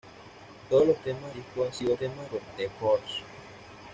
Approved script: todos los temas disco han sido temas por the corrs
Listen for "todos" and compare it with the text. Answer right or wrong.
right